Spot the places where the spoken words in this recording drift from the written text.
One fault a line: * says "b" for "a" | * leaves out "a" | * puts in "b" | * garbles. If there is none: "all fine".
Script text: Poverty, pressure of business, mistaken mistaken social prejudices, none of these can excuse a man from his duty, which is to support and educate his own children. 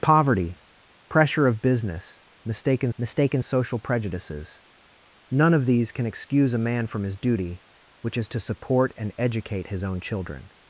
all fine